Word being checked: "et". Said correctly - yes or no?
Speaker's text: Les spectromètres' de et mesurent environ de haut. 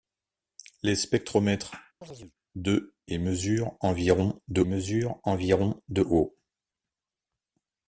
yes